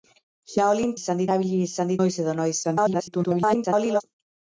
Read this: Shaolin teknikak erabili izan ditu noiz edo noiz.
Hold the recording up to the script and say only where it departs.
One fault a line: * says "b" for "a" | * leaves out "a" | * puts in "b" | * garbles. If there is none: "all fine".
* says "izan" for "teknikak"
* leaves out "ditu"
* garbles